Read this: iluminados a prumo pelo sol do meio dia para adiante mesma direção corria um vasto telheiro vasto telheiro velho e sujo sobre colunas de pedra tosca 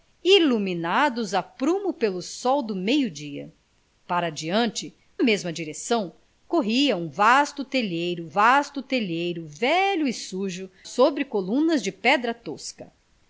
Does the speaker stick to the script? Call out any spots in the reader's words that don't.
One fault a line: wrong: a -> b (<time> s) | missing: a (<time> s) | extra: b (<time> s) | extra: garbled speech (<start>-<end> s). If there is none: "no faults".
no faults